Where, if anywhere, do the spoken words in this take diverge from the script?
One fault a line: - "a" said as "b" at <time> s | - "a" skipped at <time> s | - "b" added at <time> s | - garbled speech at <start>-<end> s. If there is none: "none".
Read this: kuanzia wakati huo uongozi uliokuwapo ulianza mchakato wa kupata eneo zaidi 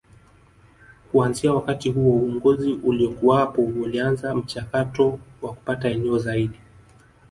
none